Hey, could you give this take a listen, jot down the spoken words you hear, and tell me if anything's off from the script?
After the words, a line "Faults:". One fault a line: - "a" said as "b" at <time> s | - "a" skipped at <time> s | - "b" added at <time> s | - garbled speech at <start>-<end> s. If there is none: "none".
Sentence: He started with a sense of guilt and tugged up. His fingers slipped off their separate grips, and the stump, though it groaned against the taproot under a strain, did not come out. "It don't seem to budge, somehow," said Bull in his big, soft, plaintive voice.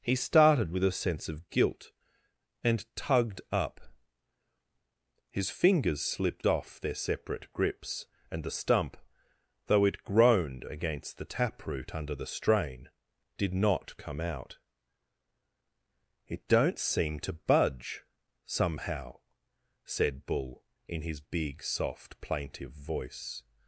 He started with a sense of guilt and tugged up. His fingers slipped off their separate grips, and the stump, though it groaned against the taproot under the strain, did not come out. "It don't seem to budge, somehow," said Bull in his big, soft, plaintive voice.
Faults:
- "a" said as "the" at 12.1 s